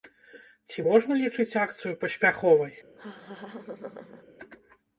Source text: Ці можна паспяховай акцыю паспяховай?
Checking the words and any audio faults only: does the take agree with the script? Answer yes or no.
no